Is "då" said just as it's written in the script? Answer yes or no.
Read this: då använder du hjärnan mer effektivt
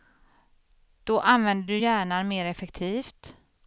yes